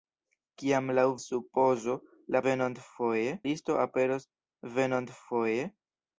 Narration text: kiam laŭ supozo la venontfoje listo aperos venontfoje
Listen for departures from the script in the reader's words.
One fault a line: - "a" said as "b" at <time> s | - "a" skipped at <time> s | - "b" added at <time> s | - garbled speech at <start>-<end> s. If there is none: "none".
none